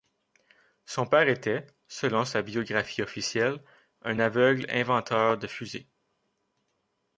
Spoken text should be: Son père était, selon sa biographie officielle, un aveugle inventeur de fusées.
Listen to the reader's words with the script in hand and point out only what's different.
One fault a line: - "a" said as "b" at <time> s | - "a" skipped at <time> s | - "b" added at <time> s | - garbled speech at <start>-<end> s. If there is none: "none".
none